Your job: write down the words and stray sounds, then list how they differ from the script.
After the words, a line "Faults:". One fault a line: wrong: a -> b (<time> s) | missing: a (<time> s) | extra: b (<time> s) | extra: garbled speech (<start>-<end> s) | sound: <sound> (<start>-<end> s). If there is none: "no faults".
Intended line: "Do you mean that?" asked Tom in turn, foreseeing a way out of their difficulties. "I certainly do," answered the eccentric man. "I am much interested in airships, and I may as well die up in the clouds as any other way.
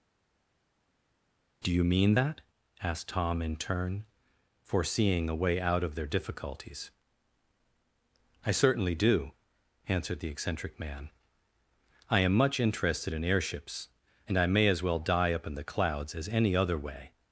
"Do you mean that?" asked Tom in turn, foreseeing a way out of their difficulties. "I certainly do," answered the eccentric man. "I am much interested in airships, and I may as well die up in the clouds as any other way.
Faults:
no faults